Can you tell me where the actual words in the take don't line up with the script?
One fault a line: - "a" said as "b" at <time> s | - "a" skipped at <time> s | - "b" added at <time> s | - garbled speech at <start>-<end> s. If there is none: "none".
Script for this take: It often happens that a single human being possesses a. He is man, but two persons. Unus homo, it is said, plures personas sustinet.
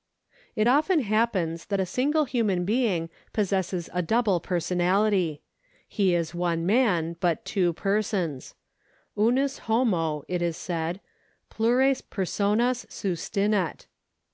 - "double personality" added at 4.0 s
- "one" added at 6.3 s